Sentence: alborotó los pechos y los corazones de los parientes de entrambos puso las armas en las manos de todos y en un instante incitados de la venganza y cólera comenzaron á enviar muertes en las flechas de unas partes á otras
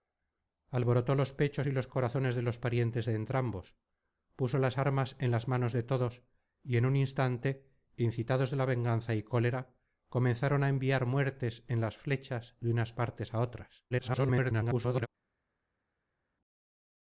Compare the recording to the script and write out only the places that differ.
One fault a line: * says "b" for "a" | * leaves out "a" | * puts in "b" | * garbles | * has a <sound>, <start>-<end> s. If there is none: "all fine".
* garbles